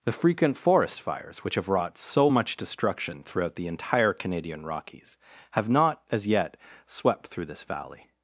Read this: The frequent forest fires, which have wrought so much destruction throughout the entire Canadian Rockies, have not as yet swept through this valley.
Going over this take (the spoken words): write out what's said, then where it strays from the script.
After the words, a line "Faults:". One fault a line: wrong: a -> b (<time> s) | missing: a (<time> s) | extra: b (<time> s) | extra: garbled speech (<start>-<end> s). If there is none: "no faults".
The frequent forest fires, which have wrought so much destruction throughout the entire Canadian Rockies, have not as yet swept through this valley.
Faults:
no faults